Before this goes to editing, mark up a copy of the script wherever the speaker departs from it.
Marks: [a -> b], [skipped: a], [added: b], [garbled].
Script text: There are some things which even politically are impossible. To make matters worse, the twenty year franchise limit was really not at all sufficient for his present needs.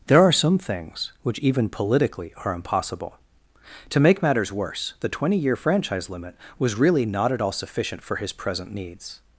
There are some things which even politically are impossible. To make matters worse, the twenty year franchise limit was really not at all sufficient for his present needs.